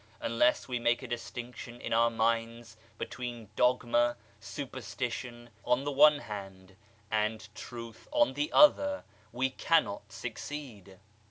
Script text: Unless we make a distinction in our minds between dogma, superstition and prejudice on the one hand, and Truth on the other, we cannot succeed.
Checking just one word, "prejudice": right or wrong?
wrong